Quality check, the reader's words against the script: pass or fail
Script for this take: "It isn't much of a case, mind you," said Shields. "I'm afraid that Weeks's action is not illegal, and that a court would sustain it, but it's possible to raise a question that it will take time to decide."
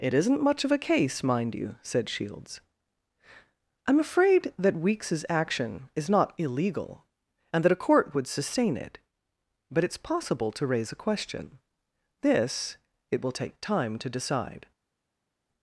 fail